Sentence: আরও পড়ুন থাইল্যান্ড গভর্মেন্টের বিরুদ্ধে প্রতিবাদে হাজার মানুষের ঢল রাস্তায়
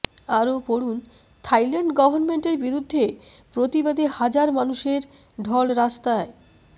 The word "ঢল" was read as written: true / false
true